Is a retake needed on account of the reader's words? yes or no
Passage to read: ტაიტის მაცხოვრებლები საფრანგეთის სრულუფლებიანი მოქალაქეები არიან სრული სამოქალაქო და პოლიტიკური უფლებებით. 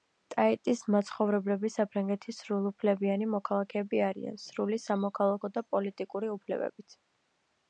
no